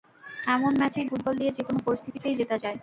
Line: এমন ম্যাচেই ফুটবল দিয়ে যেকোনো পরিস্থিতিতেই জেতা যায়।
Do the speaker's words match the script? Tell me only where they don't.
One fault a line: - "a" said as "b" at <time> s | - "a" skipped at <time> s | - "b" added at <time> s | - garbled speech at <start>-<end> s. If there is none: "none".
none